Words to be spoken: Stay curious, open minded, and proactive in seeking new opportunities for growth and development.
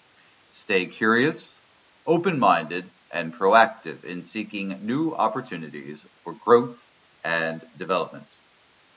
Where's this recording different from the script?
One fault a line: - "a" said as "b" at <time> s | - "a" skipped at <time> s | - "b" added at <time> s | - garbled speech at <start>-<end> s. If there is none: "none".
none